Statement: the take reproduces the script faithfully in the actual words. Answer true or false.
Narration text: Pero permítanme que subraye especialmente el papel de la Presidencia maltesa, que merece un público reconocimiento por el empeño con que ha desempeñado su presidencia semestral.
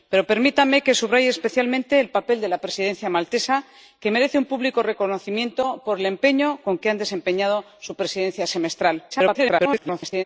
false